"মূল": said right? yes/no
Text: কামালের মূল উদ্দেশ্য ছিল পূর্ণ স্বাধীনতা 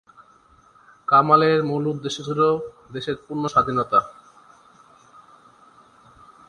yes